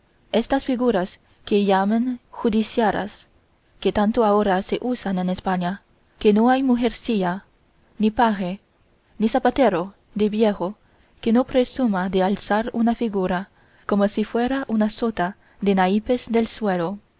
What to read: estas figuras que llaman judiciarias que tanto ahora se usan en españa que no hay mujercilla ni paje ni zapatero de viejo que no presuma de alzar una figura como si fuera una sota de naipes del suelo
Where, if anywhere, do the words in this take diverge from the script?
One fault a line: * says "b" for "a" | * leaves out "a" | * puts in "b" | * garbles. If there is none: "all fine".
all fine